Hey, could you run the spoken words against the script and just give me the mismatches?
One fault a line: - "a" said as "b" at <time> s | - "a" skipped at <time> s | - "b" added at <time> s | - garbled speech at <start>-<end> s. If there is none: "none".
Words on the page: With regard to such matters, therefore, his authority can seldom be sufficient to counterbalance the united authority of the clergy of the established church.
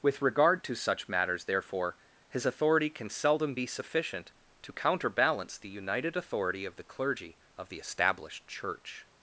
none